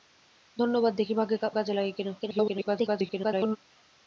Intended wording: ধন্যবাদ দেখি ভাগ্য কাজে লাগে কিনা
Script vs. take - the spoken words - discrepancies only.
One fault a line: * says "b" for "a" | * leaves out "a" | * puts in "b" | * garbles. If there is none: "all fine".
* leaves out "ভাগ্য"
* garbles